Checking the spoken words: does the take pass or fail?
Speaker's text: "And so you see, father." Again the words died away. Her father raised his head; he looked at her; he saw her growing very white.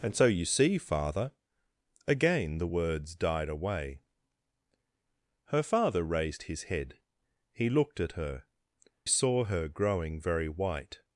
fail